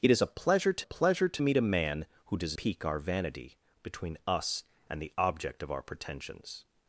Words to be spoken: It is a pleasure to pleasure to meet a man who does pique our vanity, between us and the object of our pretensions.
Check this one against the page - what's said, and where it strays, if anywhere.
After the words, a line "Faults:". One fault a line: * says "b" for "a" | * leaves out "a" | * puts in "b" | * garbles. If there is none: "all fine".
It is a pleasure to pleasure to meet a man who does pique our vanity, between us and the object of our pretensions.
Faults:
all fine